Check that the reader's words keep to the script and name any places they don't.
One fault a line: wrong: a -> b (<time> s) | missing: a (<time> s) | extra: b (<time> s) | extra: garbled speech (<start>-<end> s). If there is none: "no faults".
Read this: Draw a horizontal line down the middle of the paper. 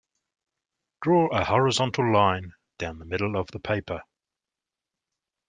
no faults